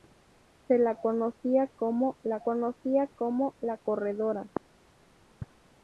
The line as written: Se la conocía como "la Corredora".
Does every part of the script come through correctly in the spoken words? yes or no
no